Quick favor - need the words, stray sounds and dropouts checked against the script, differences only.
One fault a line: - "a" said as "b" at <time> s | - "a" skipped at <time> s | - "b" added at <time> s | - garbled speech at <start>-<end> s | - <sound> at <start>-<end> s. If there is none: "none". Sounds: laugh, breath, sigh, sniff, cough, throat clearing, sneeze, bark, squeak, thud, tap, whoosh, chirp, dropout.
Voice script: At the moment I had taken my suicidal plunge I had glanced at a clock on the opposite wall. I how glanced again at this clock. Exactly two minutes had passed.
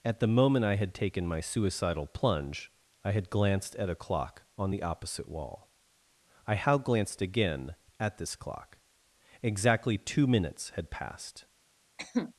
- cough at 12.0-12.3 s